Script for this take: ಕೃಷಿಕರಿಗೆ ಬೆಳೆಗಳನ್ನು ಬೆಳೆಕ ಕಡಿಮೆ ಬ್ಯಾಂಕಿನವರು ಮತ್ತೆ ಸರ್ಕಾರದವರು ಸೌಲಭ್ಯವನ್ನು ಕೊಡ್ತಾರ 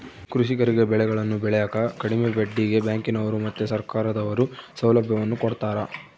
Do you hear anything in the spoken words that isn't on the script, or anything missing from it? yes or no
yes